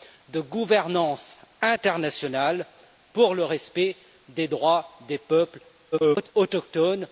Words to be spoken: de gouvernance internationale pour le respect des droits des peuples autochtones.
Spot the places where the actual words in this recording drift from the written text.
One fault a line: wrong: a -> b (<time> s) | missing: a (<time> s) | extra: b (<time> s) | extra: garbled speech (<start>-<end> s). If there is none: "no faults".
extra: garbled speech (5.9-6.3 s)